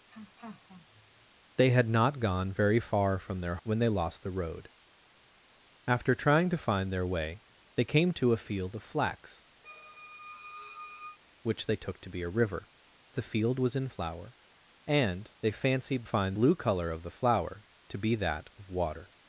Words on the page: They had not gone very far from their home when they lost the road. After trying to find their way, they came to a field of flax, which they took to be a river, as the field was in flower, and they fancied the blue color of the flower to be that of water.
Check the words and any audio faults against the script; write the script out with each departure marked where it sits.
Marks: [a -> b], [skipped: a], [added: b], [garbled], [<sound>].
[laugh] They had not gone very far from their [skipped: home] when they lost the road. After trying to find their way, they came to a field of flax, [squeak] which they took to be a river, [skipped: as] the field was in flower, and they fancied [the -> find] blue color of the flower to be that of water.